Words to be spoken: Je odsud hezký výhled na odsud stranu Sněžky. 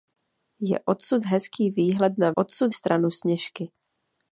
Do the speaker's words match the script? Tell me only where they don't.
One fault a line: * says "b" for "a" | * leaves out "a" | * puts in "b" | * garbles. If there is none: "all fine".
all fine